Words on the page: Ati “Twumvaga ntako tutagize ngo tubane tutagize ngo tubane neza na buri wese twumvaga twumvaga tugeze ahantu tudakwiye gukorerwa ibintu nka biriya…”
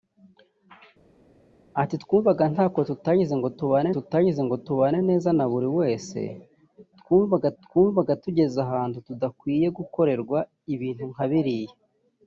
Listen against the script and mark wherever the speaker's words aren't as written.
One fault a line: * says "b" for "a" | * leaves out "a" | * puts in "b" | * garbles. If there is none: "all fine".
all fine